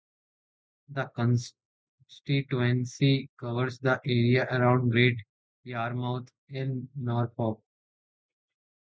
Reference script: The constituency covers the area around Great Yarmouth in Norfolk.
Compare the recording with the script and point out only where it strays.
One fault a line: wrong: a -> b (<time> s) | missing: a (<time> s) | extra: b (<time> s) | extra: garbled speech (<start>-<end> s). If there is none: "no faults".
no faults